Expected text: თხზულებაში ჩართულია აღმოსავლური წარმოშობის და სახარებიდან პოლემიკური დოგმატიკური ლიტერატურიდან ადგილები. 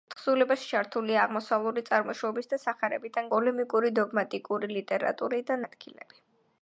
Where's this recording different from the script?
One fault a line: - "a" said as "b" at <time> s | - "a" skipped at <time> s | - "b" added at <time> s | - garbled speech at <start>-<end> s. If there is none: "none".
none